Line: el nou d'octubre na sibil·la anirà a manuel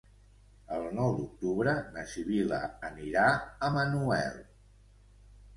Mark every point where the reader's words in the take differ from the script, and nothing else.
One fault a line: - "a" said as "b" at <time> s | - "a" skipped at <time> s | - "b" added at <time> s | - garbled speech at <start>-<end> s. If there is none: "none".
none